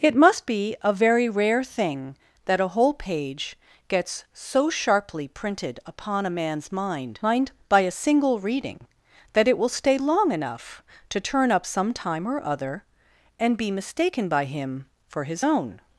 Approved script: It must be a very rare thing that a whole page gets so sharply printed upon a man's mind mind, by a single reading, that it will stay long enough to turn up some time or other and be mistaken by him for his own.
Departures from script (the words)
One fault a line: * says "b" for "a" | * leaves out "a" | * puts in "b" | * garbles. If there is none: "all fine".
all fine